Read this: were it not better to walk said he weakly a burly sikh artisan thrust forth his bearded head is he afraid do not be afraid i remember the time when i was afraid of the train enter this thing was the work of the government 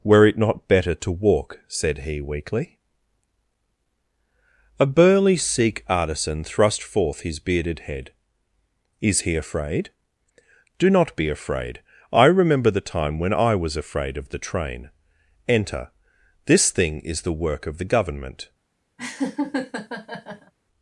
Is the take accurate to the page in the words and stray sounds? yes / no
no